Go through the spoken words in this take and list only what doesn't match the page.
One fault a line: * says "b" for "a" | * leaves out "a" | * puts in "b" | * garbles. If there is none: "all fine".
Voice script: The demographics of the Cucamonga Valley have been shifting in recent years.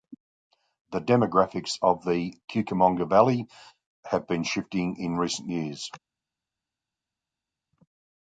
all fine